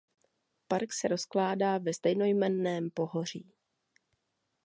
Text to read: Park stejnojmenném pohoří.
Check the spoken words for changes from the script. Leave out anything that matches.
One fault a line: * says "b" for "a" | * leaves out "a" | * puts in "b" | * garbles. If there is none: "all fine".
* puts in "se rozkládá ve"